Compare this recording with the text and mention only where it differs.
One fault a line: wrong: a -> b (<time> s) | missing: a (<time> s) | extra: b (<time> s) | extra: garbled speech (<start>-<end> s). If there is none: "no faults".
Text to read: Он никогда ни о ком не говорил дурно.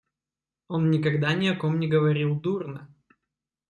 no faults